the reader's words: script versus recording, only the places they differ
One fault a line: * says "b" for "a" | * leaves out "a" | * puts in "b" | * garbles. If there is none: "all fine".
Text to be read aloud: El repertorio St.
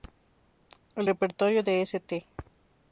* puts in "de"